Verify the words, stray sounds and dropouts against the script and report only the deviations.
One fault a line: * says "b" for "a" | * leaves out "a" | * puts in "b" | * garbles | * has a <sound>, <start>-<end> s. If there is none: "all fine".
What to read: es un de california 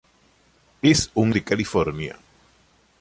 all fine